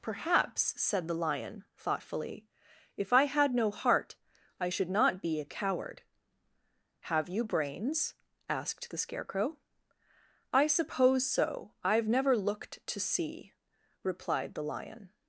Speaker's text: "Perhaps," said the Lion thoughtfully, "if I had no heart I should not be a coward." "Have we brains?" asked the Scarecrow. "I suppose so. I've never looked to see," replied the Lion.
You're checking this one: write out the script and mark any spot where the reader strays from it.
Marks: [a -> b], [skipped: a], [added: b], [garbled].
"Perhaps," said the Lion thoughtfully, "if I had no heart I should not be a coward." "Have [we -> you] brains?" asked the Scarecrow. "I suppose so. I've never looked to see," replied the Lion.